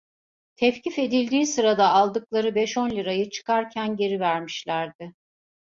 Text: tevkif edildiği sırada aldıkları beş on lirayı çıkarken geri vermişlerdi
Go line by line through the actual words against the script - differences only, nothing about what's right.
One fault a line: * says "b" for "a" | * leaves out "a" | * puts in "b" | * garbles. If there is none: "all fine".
all fine